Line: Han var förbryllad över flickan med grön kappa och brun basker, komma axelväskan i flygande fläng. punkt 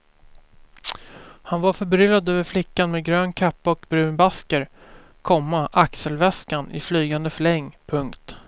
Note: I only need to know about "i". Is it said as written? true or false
true